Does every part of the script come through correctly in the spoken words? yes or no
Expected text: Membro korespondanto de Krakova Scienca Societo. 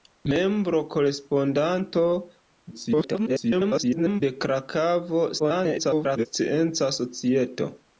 no